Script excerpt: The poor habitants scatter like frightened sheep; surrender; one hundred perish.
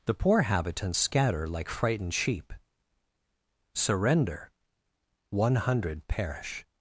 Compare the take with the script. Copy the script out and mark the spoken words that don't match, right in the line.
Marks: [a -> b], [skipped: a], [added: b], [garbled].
The poor habitants scatter like frightened sheep; surrender; one hundred perish.